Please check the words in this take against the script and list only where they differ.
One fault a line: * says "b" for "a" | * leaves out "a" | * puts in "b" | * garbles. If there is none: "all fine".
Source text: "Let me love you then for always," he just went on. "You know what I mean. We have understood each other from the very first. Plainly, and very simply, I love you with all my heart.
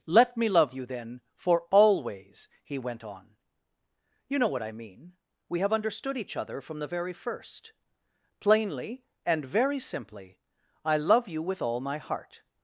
* leaves out "just"